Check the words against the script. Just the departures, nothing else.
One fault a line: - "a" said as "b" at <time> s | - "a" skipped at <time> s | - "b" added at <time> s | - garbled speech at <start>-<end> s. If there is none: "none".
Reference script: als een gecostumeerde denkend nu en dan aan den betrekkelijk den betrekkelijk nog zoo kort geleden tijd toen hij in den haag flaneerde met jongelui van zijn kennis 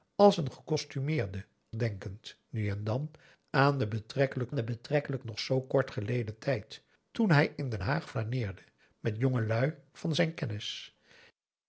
none